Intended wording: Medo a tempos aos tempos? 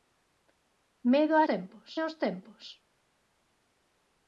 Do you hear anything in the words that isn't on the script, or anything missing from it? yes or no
no